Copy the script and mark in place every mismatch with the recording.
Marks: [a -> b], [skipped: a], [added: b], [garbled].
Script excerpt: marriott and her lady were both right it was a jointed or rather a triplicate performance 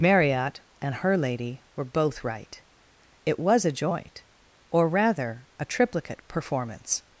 marriott and her lady were both right it was a [jointed -> joint] or rather a triplicate performance